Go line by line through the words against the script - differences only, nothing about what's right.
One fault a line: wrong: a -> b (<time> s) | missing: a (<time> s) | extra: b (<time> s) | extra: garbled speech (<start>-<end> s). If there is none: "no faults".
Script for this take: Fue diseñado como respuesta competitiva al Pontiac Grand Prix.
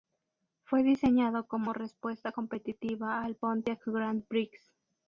no faults